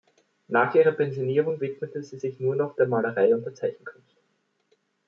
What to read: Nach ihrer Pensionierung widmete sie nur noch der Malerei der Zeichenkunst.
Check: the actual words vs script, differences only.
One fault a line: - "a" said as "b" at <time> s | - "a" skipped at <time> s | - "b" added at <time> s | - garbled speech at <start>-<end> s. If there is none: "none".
- "sich" added at 2.1 s
- "und" added at 3.3 s